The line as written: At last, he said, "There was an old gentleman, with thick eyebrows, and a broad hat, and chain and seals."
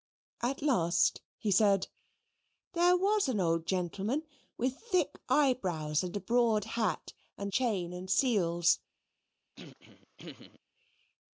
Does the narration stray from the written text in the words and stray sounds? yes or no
yes